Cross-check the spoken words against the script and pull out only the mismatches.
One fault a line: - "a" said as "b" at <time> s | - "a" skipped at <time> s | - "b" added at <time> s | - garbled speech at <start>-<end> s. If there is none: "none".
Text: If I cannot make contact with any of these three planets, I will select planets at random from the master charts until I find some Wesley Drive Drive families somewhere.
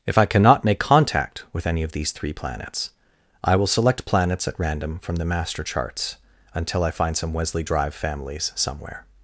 - "Drive" skipped at 7.9 s